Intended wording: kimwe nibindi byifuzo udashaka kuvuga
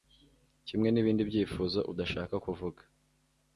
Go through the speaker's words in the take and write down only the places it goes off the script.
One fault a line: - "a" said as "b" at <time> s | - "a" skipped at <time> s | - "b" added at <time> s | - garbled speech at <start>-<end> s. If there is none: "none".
none